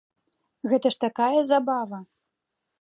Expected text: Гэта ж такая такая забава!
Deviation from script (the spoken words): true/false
true